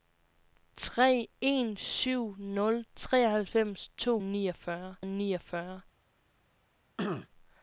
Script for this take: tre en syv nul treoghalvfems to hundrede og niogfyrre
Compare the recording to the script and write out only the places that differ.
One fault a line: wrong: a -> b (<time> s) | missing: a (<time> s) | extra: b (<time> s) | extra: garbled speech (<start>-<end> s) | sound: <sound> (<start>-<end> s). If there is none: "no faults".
wrong: hundrede -> niogfyrre (4.2 s)
sound: throat clearing (7.0-7.3 s)